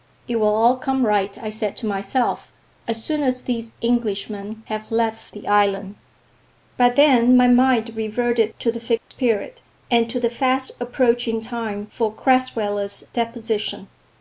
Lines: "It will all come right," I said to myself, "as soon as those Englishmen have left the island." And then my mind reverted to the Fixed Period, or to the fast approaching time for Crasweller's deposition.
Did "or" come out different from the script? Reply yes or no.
yes